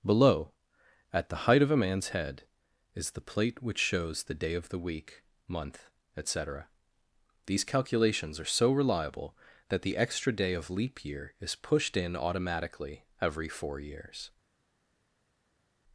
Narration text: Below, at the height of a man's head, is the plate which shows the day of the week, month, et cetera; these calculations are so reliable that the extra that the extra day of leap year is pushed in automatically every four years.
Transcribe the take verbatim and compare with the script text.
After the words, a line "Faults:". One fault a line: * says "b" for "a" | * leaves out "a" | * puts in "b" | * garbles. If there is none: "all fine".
Below, at the height of a man's head, is the plate which shows the day of the week, month, et cetera; these calculations are so reliable that the extra day of leap year is pushed in automatically every four years.
Faults:
* leaves out "that the extra"